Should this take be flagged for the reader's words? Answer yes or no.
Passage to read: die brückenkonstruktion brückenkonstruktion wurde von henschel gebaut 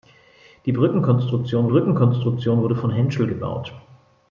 no